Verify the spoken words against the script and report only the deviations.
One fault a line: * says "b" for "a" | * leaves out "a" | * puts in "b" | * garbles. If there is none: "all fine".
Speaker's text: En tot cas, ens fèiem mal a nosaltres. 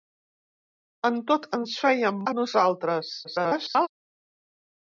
* leaves out "cas"
* leaves out "mal"
* garbles